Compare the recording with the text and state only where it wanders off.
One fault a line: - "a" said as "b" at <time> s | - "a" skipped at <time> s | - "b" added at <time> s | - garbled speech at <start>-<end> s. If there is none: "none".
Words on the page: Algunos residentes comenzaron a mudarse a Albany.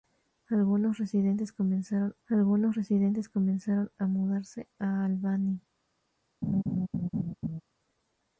- "algunos residentes comenzaron" added at 2.3 s